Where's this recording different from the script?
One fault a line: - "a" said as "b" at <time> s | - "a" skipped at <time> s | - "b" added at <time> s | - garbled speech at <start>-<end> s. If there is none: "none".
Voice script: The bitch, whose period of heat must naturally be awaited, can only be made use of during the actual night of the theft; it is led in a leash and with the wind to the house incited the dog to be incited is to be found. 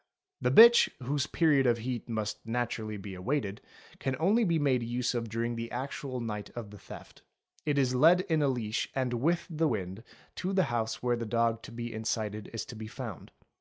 - "incited" said as "where" at 11.0 s